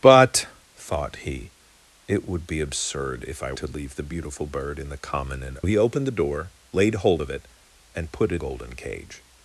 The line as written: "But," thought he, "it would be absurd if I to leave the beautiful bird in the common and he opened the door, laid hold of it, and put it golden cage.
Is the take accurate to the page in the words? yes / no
yes